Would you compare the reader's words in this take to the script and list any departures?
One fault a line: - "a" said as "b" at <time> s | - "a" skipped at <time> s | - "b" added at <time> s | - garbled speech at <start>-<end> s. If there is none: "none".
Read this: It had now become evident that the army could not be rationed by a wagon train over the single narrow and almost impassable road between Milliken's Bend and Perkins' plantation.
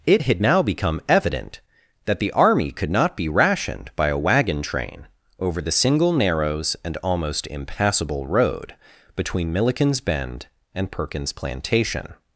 - "narrow" said as "narrows" at 6.1 s